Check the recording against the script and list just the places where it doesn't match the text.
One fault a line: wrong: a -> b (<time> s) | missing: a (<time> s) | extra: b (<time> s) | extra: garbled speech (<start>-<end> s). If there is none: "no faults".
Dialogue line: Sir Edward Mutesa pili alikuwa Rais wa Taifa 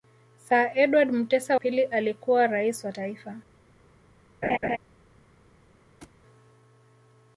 no faults